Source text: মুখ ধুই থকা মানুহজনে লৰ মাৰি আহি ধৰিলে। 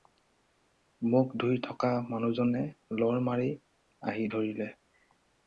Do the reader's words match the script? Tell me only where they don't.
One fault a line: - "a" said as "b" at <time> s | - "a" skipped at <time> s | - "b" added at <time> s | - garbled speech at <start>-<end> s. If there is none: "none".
none